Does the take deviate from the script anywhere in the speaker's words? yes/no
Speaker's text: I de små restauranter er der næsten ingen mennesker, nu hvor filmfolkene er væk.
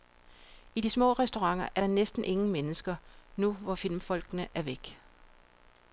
no